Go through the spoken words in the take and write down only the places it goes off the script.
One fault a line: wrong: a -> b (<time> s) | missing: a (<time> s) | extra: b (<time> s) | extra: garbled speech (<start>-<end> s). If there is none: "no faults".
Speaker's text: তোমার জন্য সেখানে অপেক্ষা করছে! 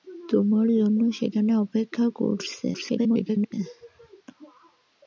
extra: garbled speech (2.7-3.5 s)